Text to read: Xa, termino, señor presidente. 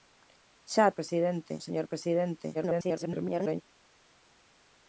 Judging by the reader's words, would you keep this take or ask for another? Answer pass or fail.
fail